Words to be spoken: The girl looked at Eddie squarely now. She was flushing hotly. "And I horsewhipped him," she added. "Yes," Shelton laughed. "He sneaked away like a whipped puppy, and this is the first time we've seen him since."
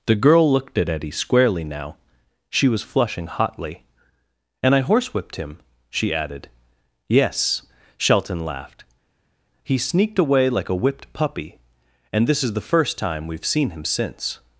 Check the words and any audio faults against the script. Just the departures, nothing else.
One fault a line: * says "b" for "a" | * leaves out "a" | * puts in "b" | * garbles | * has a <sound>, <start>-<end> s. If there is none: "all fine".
all fine